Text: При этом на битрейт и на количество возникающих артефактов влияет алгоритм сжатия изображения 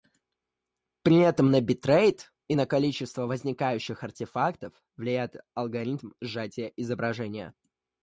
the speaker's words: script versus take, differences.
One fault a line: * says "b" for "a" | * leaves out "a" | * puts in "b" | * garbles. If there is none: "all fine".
all fine